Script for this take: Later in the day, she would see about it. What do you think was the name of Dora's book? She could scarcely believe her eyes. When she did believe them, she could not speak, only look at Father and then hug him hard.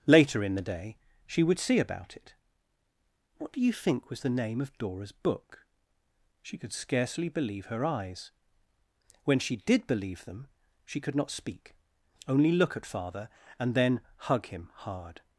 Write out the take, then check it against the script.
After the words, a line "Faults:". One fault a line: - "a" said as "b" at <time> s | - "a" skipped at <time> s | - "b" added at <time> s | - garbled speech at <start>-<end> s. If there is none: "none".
Later in the day, she would see about it. What do you think was the name of Dora's book? She could scarcely believe her eyes. When she did believe them, she could not speak, only look at Father and then hug him hard.
Faults:
none